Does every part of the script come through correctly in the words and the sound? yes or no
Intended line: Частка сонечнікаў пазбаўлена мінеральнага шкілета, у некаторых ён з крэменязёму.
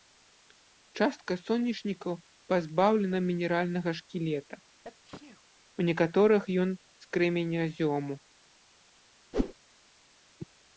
no